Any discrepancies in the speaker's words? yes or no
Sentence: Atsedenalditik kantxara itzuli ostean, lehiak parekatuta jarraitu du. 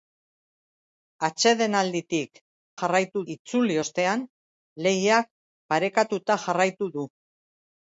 yes